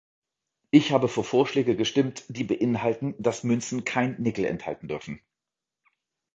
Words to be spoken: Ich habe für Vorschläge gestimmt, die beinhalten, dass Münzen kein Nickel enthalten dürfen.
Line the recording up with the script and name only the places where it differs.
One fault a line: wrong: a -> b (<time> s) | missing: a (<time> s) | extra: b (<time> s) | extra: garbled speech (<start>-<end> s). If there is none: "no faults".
no faults